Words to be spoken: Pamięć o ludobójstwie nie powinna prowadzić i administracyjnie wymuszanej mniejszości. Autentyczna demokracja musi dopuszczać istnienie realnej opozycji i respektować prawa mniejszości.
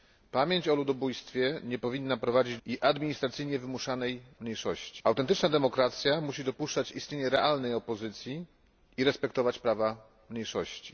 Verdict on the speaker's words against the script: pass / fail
pass